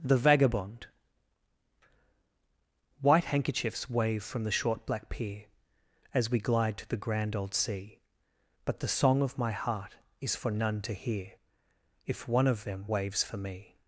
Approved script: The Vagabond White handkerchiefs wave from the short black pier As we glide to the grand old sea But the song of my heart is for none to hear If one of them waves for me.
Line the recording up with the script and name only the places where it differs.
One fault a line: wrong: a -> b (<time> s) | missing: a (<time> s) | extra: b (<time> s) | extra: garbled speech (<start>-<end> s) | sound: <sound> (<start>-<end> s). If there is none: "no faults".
no faults